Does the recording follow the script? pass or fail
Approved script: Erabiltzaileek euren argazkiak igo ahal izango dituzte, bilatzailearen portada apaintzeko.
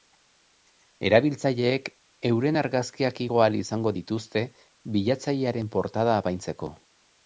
pass